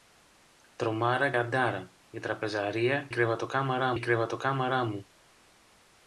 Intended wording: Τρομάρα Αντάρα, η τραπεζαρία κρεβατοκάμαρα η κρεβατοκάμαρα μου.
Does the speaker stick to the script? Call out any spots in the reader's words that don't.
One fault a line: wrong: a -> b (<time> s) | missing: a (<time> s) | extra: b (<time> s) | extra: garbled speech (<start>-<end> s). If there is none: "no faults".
no faults